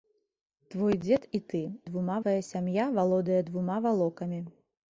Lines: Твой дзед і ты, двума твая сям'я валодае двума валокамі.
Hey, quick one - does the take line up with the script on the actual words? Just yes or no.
yes